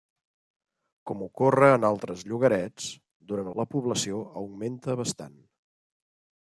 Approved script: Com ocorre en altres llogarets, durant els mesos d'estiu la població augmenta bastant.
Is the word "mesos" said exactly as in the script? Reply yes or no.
no